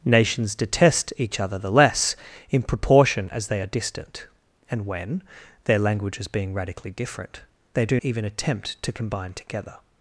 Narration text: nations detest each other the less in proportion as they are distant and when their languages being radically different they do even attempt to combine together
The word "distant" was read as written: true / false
true